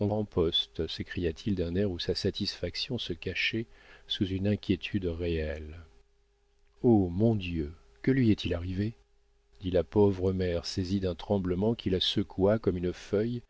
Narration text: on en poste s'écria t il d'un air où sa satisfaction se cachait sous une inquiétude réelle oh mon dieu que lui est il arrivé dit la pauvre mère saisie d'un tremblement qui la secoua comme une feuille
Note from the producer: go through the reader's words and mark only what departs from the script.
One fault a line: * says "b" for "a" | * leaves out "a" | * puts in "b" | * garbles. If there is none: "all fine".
all fine